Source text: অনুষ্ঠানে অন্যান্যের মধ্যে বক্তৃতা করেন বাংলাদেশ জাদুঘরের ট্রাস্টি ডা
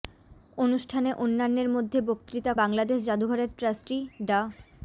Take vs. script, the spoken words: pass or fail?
fail